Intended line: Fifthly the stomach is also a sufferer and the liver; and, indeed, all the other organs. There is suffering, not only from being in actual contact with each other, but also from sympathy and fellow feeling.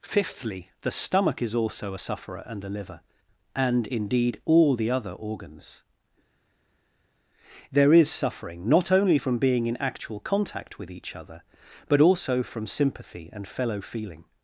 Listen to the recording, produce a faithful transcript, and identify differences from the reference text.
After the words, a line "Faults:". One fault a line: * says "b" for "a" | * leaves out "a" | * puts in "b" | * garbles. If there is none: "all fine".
Fifthly the stomach is also a sufferer and the liver; and, indeed, all the other organs. There is suffering, not only from being in actual contact with each other, but also from sympathy and fellow feeling.
Faults:
all fine